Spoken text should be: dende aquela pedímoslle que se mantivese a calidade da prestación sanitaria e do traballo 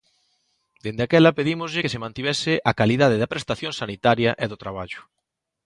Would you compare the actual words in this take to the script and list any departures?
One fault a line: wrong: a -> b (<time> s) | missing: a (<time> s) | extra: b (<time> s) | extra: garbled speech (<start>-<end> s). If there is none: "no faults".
no faults